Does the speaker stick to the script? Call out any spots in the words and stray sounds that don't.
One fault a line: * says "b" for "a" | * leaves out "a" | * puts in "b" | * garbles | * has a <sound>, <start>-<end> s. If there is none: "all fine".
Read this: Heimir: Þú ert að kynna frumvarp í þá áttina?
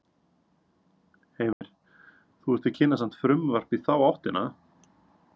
* has a dropout, 1.5-1.6 s
* puts in "samt"